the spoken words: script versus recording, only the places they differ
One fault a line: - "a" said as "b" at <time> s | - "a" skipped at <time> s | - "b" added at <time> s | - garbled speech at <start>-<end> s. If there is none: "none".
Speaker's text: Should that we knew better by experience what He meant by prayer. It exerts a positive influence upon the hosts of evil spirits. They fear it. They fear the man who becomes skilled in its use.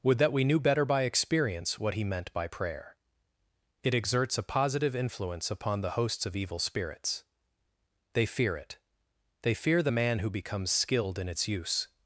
- "Should" said as "Would" at 0.0 s